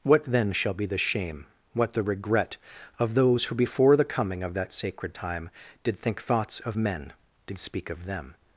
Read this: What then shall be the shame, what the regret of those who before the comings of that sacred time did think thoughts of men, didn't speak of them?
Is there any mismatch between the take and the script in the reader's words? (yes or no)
yes